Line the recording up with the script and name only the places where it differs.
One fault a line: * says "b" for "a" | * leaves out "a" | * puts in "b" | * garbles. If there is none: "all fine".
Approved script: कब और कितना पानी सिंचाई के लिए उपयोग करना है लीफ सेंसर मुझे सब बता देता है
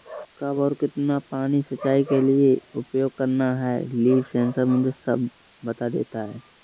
all fine